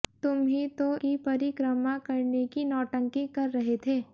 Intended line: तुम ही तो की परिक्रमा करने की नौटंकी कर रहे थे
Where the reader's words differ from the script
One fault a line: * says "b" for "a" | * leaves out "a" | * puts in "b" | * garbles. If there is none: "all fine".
all fine